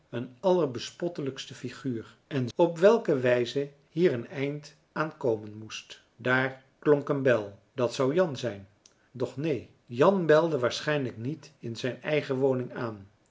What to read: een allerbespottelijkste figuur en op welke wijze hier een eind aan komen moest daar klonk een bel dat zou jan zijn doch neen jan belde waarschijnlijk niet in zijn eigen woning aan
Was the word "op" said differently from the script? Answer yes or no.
no